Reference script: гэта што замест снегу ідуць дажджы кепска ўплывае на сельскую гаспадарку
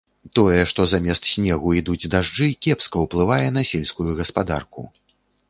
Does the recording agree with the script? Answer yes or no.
no